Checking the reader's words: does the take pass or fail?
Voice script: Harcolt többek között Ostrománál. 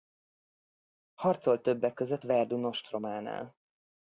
fail